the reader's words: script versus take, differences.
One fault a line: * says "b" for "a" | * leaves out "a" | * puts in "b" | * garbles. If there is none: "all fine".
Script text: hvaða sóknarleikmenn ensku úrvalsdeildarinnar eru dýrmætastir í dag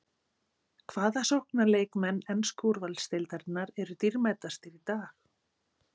all fine